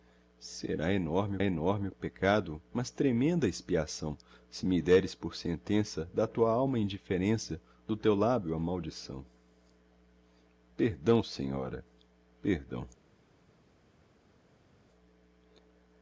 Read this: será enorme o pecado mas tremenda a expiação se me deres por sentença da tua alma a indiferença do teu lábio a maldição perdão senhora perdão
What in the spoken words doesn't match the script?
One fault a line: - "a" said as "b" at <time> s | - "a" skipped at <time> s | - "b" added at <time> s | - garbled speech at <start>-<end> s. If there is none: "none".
- "enorme" added at 1.4 s